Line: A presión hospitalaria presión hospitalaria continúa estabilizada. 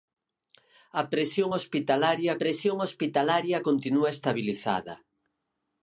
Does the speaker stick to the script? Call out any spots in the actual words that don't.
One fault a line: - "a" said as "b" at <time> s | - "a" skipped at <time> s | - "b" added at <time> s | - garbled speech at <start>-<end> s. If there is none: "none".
none